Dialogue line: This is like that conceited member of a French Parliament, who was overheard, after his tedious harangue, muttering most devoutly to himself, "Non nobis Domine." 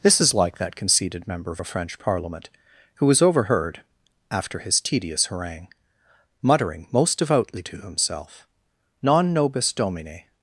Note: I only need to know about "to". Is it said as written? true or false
true